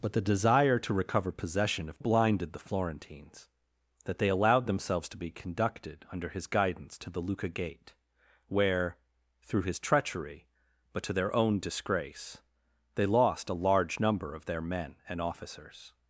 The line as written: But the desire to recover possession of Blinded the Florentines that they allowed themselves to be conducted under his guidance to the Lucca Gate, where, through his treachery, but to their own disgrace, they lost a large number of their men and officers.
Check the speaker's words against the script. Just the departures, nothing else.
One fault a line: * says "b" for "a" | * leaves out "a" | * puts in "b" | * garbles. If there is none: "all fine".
all fine